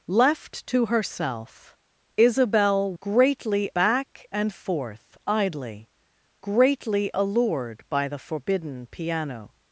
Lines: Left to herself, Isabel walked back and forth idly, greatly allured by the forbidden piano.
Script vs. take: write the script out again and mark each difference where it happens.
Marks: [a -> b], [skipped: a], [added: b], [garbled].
Left to herself, Isabel [walked -> greatly] back and forth idly, greatly allured by the forbidden piano.